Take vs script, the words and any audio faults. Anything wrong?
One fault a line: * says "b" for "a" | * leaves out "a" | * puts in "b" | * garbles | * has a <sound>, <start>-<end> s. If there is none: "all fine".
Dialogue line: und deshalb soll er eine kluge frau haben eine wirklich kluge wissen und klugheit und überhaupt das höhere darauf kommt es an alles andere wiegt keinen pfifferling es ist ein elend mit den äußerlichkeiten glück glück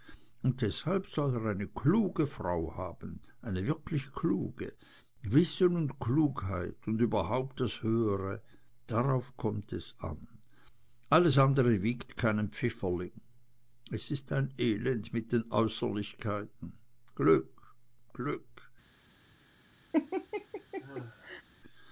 * has a laugh, 19.9-21.4 s